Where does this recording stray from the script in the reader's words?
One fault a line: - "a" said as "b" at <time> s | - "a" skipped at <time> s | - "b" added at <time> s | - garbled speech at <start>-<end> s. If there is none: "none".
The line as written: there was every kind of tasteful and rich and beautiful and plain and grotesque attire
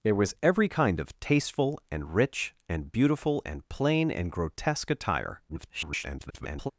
- garbled speech at 5.5-6.7 s